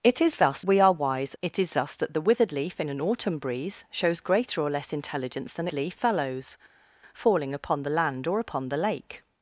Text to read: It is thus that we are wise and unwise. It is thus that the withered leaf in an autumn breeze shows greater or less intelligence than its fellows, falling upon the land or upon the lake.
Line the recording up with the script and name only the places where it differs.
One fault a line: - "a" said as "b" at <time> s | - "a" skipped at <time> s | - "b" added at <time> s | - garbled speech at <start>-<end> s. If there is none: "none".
- "that" skipped at 0.6 s
- "and unwise" skipped at 1.3 s
- "its" said as "leaf" at 5.7 s